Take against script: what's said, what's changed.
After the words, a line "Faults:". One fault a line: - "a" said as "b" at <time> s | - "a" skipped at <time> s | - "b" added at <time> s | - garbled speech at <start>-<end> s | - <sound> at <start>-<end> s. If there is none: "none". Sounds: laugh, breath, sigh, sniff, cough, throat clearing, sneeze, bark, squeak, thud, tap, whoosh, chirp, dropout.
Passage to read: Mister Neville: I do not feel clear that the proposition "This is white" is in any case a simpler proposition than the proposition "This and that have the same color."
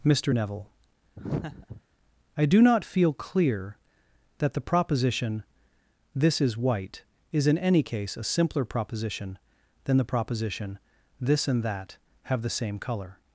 Mister Neville: I do not feel clear that the proposition "This is white" is in any case a simpler proposition than the proposition "This and that have the same color."
Faults:
- laugh at 1.2-1.8 s